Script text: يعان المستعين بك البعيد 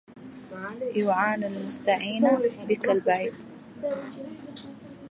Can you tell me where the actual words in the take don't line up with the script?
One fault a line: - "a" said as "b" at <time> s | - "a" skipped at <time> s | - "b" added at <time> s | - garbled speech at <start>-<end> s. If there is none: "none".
none